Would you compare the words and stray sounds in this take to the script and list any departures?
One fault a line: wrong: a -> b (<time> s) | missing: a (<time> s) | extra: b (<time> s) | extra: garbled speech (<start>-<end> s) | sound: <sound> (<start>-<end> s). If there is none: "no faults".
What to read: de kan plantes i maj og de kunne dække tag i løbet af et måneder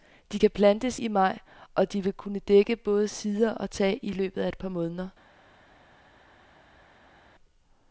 extra: vil (2.0 s)
extra: både sider og (2.8 s)
extra: par (4.6 s)